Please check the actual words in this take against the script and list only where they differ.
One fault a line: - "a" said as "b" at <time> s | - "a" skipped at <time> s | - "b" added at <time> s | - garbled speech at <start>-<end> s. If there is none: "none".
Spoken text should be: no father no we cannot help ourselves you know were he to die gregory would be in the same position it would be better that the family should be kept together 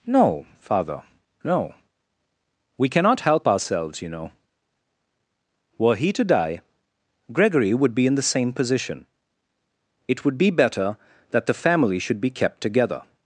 none